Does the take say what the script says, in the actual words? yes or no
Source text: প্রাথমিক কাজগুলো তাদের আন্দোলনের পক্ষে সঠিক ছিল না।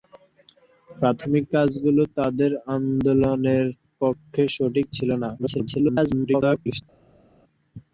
no